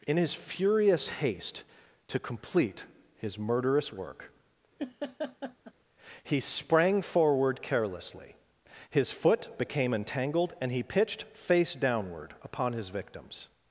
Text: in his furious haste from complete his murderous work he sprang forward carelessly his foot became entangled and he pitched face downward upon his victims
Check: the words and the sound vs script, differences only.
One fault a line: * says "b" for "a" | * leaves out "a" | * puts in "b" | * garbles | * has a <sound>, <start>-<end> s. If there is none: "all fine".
* says "to" for "from"
* has a laugh, 4.8-5.7 s